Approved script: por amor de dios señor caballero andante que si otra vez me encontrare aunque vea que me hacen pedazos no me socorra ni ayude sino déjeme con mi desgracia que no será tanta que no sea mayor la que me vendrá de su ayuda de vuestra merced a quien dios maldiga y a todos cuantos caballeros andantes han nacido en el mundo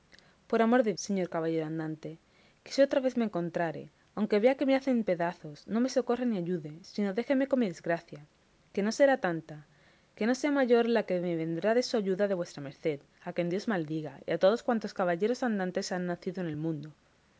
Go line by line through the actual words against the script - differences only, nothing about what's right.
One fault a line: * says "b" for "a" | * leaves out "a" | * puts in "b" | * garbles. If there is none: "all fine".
* leaves out "dios"